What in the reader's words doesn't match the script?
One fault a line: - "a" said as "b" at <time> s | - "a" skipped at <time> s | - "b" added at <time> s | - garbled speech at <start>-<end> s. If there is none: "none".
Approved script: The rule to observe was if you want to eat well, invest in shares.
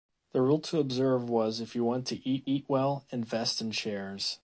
- "eat" added at 2.5 s